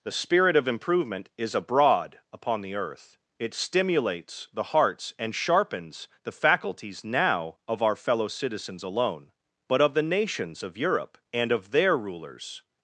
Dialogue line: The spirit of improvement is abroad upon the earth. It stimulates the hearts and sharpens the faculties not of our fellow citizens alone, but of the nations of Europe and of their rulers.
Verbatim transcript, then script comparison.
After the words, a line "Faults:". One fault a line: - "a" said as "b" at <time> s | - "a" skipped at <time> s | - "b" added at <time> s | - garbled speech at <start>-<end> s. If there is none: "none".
The spirit of improvement is abroad upon the earth. It stimulates the hearts and sharpens the faculties now of our fellow citizens alone, but of the nations of Europe and of their rulers.
Faults:
- "not" said as "now" at 7.0 s